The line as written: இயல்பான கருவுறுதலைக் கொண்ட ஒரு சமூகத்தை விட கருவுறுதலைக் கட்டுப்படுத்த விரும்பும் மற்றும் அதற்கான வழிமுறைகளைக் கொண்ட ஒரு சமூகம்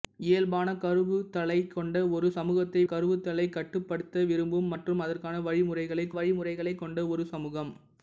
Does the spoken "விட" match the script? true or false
false